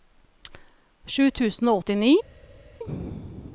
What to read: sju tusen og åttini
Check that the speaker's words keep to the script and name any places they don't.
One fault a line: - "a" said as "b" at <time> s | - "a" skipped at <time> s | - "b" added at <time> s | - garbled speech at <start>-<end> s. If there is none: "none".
none